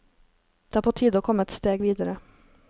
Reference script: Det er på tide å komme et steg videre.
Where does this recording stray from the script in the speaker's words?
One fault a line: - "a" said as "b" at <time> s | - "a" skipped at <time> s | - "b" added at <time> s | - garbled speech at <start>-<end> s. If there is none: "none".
none